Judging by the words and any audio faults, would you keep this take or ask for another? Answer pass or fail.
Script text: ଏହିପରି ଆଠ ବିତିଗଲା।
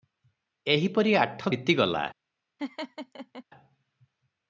fail